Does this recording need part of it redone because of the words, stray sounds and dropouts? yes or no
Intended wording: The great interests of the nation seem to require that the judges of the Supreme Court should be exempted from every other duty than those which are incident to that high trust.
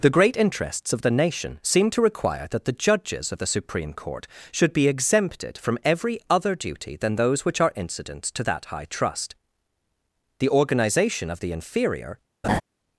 yes